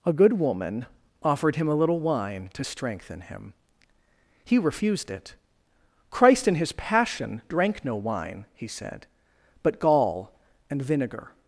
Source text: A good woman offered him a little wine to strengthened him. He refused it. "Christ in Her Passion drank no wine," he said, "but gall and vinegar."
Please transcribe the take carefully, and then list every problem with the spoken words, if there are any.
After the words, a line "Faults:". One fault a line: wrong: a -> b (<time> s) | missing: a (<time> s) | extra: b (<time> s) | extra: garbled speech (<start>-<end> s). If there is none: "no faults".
A good woman offered him a little wine to strengthen him. He refused it. "Christ in His Passion drank no wine," he said, "but gall and vinegar."
Faults:
wrong: strengthened -> strengthen (2.6 s)
wrong: Her -> His (6.5 s)